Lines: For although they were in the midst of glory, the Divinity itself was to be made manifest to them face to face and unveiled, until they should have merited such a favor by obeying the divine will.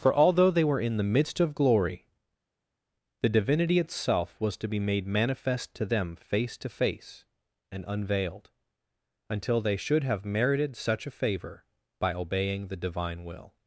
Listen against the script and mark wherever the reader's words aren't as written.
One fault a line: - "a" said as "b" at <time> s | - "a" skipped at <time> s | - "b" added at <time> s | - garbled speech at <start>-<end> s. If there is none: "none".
none